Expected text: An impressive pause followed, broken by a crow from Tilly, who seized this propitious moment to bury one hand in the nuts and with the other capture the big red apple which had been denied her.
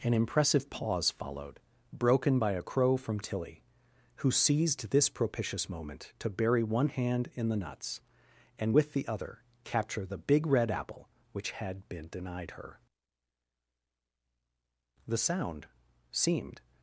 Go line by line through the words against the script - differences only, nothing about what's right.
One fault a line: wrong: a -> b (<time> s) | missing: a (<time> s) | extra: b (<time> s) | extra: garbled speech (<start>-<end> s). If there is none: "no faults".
extra: The sound seemed (15.1 s)